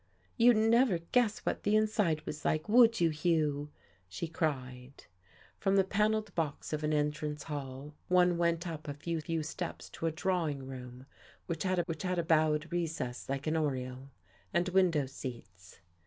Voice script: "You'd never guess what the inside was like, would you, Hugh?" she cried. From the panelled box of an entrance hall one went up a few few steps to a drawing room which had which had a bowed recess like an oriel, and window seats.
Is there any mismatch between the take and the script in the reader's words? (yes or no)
no